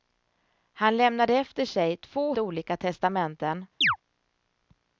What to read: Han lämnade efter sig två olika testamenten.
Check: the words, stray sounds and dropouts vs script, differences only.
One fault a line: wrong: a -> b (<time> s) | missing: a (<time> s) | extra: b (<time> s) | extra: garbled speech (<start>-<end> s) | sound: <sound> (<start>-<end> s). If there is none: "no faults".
sound: chirp (3.8-4.0 s)